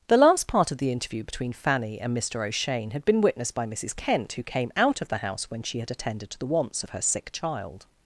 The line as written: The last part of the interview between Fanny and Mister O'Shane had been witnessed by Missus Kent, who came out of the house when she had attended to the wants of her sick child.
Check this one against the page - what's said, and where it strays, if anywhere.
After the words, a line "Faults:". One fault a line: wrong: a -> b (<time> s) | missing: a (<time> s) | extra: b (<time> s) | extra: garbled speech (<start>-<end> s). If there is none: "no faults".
The last part of the interview between Fanny and Mister O'Shane had been witnessed by Missus Kent, who came out of the house when she had attended to the wants of her sick child.
Faults:
no faults